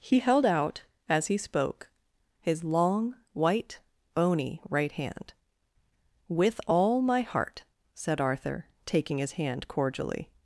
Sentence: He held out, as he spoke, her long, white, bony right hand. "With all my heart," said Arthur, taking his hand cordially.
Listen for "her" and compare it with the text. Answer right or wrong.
wrong